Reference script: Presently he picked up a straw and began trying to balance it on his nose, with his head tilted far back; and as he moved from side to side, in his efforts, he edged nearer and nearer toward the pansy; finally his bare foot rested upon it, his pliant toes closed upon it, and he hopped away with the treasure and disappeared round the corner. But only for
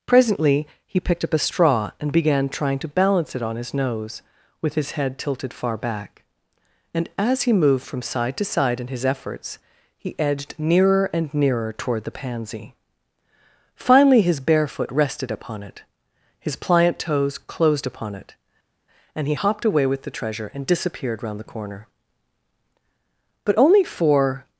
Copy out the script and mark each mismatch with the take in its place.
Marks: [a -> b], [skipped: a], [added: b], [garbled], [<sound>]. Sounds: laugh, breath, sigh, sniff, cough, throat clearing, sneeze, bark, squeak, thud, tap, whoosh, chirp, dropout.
Presently he picked up a straw and began trying to balance it on his nose, with his head tilted far back; and as he moved from side to side, in his efforts, he edged nearer and nearer toward the pansy; finally his bare foot rested upon it, his pliant toes closed upon it, and he hopped away with the treasure and disappeared round the corner. But only for